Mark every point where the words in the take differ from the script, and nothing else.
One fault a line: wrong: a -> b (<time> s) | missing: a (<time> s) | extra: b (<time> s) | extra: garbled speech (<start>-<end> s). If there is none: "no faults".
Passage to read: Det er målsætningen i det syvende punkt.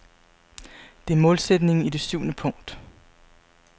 no faults